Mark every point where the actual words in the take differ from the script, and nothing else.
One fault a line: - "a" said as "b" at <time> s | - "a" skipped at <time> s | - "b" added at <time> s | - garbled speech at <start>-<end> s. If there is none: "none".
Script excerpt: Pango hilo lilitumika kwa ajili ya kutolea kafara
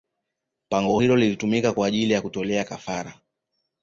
none